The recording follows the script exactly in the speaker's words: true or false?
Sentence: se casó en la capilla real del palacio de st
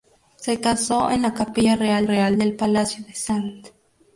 false